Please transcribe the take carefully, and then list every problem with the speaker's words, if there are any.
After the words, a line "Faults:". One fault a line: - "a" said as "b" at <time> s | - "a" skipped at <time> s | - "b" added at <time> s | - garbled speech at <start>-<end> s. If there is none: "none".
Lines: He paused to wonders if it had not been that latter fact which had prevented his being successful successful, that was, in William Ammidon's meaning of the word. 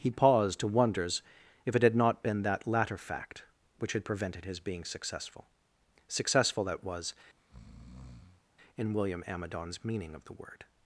He paused to wonders if it had not been that latter fact which had prevented his being successful successful, that was, in William Ammidon's meaning of the word.
Faults:
none